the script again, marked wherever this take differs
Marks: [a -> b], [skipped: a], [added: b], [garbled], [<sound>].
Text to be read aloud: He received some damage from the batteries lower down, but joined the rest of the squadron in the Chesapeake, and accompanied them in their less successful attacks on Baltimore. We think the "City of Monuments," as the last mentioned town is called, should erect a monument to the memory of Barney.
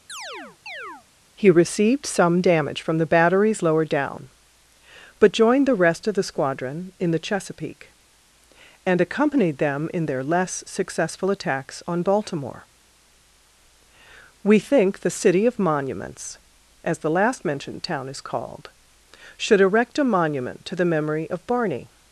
[chirp] He received some damage from the batteries lower down, but joined the rest of the squadron in the Chesapeake, and accompanied them in their less successful attacks on Baltimore. We think the "City of Monuments," as the last mentioned town is called, should erect a monument to the memory of Barney.